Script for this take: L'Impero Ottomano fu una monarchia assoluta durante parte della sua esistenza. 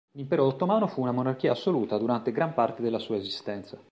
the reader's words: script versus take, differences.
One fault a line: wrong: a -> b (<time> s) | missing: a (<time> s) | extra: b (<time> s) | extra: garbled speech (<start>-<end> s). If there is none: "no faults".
extra: gran (2.3 s)